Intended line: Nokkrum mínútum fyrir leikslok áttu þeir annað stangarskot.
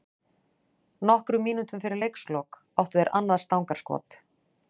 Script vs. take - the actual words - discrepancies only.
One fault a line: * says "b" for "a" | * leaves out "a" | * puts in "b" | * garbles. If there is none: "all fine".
all fine